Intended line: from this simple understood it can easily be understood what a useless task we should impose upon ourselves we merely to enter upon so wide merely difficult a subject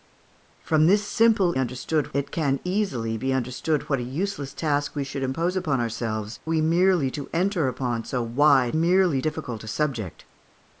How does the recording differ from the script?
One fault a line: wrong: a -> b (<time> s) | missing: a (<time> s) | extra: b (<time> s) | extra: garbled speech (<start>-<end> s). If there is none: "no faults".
no faults